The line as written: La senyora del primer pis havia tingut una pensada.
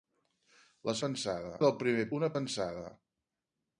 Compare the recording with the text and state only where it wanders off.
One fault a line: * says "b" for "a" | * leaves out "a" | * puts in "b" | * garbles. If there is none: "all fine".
* says "pensada" for "senyora"
* leaves out "pis havia tingut"